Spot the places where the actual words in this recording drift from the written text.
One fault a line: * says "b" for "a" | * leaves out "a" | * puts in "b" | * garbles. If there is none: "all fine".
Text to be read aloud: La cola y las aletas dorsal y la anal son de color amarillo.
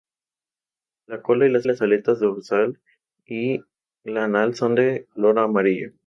* puts in "las"